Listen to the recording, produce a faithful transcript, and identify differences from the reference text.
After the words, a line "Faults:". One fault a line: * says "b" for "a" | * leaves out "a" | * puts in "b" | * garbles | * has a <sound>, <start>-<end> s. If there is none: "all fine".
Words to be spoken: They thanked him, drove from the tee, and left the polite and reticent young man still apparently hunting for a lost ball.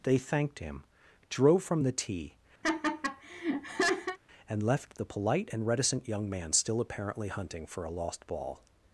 They thanked him, drove from the tee, and left the polite and reticent young man still apparently hunting for a lost ball.
Faults:
* has a laugh, 2.6-4.2 s